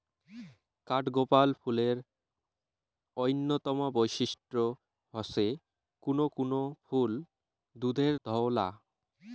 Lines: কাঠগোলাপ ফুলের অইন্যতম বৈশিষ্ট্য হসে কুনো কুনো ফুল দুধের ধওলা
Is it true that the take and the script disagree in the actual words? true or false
false